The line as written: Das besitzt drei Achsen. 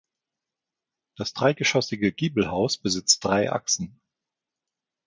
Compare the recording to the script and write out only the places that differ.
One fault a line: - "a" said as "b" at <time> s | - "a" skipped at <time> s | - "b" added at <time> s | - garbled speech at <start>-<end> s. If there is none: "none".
- "dreigeschossige Giebelhaus" added at 1.3 s